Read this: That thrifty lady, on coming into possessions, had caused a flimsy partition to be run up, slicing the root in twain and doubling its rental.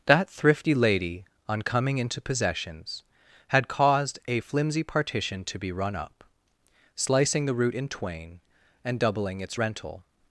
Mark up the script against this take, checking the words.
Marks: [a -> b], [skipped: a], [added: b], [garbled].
That thrifty lady, on coming into possessions, had caused a flimsy partition to be run up, slicing the root in twain and doubling its rental.